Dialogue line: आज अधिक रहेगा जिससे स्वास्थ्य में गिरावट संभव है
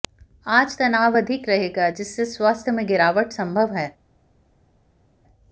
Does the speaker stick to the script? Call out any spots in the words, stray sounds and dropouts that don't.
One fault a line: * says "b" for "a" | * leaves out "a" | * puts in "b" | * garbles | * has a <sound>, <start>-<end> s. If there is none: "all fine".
* puts in "तनाव"